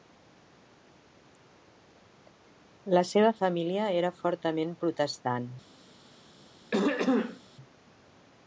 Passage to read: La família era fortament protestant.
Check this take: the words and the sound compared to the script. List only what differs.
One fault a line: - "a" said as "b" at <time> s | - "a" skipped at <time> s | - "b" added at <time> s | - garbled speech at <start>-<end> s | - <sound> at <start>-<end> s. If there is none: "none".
- "seva" added at 3.1 s
- throat clearing at 6.7-7.4 s